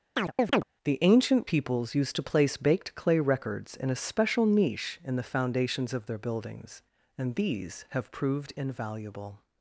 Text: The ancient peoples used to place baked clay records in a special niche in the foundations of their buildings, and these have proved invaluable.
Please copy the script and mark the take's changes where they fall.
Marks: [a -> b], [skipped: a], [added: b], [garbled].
The ancient peoples used to place baked clay records in a special niche in the foundations of their buildings, and these have proved invaluable.